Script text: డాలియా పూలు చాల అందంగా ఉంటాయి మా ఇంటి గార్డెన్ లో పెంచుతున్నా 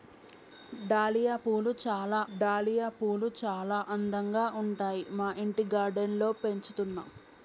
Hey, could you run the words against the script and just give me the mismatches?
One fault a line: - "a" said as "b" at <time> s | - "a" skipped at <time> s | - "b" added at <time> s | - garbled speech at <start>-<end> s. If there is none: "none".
- "డాలియా పూలు చాల" added at 2.3 s